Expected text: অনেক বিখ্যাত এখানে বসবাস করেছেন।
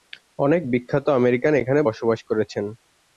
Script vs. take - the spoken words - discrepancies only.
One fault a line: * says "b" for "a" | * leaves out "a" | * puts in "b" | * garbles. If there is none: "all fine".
* puts in "আমেরিকান"